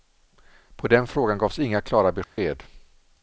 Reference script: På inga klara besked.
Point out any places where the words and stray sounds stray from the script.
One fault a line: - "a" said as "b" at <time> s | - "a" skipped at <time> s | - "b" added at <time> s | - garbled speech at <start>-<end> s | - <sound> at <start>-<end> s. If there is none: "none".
- "den frågan gavs" added at 0.9 s
- dropout at 2.2-2.4 s